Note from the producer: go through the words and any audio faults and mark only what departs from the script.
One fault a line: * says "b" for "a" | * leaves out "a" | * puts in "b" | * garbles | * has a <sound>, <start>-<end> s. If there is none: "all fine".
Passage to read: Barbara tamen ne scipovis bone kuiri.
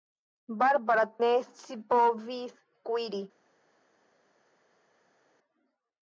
* leaves out "tamen"
* leaves out "bone"